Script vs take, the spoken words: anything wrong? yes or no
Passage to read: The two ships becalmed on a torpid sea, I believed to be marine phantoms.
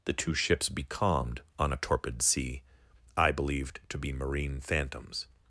no